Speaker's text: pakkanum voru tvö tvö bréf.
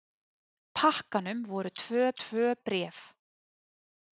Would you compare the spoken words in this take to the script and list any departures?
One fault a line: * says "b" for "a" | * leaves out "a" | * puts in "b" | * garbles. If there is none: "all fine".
all fine